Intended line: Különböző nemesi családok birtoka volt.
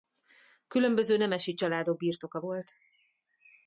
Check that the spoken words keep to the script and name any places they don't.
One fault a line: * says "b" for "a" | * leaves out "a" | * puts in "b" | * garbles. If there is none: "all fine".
all fine